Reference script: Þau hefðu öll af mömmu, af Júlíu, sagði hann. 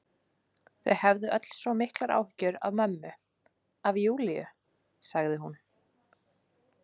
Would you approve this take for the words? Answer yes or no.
no